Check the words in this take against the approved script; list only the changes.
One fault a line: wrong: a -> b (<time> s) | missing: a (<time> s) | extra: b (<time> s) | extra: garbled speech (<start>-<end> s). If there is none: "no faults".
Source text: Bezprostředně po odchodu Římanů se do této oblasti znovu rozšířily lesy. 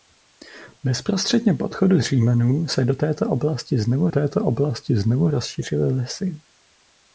extra: této oblasti znovu (4.1 s)